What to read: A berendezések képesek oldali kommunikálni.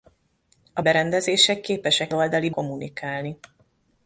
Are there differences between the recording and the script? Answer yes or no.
no